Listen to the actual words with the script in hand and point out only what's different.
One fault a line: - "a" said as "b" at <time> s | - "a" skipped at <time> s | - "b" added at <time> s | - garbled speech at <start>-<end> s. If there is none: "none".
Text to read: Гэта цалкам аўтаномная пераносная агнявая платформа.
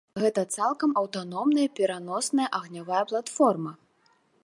none